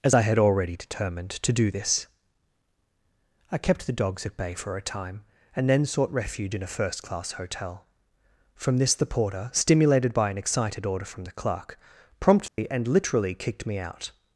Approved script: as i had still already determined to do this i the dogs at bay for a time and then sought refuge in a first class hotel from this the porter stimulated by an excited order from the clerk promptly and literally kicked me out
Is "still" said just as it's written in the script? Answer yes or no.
no